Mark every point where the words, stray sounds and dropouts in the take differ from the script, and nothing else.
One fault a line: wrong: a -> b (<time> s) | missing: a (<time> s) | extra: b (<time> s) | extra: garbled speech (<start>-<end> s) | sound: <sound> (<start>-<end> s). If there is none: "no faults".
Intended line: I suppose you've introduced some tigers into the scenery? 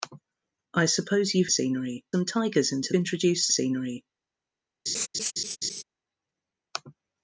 wrong: introduced -> scenery (1.5 s)
wrong: the -> introduced (3.0 s)
sound: laugh (4.9-5.8 s)